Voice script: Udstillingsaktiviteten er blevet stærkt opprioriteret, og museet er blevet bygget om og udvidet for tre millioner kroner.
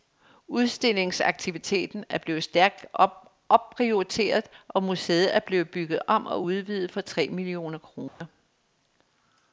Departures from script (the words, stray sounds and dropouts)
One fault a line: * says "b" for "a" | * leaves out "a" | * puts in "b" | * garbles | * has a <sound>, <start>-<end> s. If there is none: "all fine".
* has a dropout, 8.1-8.2 s